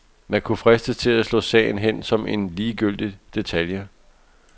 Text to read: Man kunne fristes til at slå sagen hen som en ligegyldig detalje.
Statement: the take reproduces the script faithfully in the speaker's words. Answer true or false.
true